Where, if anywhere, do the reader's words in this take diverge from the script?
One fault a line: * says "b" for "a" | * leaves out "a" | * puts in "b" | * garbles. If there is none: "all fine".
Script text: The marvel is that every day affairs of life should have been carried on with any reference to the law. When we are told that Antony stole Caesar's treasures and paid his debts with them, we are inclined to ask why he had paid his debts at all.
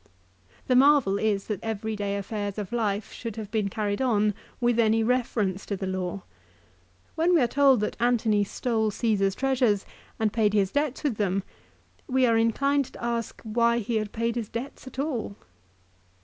all fine